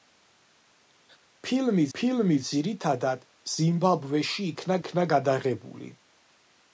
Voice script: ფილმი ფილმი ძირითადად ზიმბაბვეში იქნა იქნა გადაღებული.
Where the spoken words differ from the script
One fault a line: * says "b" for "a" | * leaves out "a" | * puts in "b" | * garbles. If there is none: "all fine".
all fine